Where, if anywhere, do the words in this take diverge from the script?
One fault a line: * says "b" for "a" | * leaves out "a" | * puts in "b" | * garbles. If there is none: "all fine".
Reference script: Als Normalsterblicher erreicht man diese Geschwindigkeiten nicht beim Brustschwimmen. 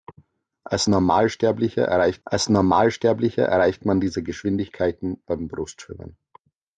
* puts in "als Normalsterblicher erreicht"
* leaves out "nicht"